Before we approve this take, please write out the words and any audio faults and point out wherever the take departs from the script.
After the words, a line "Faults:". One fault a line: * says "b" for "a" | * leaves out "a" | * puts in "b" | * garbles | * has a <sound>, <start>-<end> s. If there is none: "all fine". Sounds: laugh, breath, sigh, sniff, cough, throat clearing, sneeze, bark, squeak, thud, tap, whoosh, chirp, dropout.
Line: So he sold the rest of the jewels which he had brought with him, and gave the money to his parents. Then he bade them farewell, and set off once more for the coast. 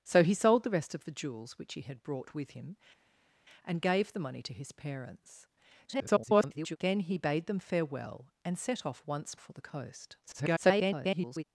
So he sold the rest of the jewels which he had brought with him, and gave the money to his parents. [garbled] Then he bade them farewell, and set off once for the coast. [garbled]
Faults:
* garbles
* leaves out "more"
* garbles